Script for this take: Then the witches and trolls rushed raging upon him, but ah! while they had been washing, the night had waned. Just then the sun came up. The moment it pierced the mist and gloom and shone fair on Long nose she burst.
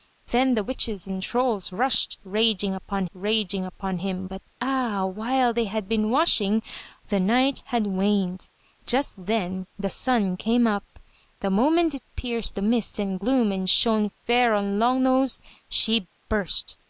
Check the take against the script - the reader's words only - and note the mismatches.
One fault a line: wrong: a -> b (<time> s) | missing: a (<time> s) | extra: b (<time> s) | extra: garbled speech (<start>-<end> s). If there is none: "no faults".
extra: raging upon (3.1 s)